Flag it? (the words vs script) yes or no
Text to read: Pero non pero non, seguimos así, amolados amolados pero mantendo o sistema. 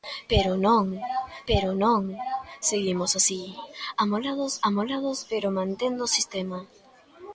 no